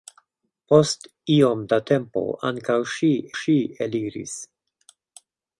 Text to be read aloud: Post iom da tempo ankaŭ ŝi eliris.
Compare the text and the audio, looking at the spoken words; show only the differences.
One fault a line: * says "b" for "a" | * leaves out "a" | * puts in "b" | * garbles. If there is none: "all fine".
* puts in "ŝi"